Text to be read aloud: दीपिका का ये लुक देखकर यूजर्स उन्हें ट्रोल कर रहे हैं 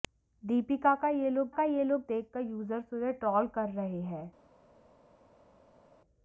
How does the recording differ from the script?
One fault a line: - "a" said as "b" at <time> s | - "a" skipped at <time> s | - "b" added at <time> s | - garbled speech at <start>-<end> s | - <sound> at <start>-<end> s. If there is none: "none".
- "का ये लुक" added at 1.5 s